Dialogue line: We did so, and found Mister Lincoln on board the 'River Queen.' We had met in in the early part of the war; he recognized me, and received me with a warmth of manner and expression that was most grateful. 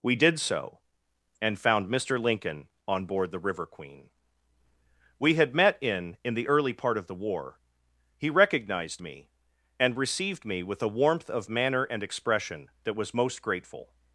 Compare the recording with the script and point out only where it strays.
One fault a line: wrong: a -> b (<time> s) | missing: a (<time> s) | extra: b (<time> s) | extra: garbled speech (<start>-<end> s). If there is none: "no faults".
no faults